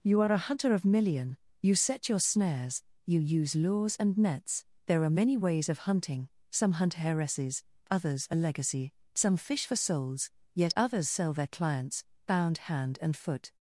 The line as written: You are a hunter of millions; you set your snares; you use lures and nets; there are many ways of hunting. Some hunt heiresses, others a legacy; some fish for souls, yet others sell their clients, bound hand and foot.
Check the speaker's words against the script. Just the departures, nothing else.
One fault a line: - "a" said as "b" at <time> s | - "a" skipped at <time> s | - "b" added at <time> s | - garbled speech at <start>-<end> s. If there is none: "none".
- "millions" said as "million" at 0.8 s